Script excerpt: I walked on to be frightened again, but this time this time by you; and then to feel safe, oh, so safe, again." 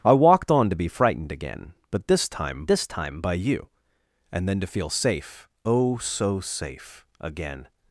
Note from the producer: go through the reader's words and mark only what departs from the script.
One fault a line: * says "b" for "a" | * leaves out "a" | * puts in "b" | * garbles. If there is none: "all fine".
all fine